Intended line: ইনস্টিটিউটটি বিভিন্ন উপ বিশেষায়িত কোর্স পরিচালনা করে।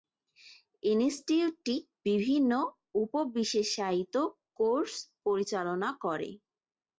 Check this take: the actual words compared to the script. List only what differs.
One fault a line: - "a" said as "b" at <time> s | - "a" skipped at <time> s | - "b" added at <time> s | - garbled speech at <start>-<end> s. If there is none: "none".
none